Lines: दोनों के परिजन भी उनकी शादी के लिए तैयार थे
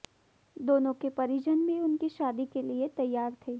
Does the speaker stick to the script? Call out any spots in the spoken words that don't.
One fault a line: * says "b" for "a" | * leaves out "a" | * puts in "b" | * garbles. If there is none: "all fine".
all fine